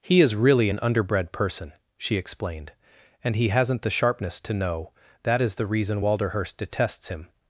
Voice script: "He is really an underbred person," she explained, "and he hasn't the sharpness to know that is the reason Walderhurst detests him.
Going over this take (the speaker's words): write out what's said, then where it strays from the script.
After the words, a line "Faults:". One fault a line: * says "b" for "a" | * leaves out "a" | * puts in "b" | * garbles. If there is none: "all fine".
"He is really an underbred person," she explained, "and he hasn't the sharpness to know that is the reason Walderhurst detests him.
Faults:
all fine